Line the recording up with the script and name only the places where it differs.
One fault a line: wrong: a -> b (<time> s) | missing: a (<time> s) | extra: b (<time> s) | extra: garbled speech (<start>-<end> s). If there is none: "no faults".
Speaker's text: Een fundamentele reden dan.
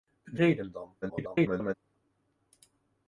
missing: fundamentele (0.4 s)
extra: garbled speech (1.0-1.7 s)